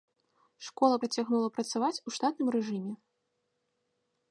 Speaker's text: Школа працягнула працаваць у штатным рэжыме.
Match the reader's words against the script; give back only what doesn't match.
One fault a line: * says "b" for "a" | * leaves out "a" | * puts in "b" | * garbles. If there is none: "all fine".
all fine